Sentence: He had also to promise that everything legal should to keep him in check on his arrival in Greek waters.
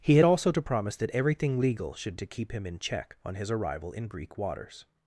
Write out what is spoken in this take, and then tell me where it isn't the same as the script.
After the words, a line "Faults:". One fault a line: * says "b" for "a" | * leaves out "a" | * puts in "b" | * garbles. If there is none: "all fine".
He had also to promise that everything legal should to keep him in check on his arrival in Greek waters.
Faults:
all fine